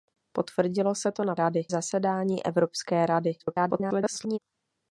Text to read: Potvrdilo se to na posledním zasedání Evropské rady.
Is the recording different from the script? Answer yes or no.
yes